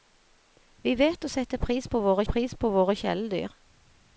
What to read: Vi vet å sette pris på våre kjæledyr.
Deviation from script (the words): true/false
true